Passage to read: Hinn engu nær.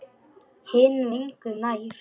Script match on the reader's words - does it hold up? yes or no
yes